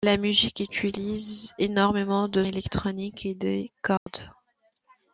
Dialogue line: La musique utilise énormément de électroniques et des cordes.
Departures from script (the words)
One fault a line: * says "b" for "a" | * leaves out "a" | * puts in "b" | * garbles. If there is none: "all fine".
all fine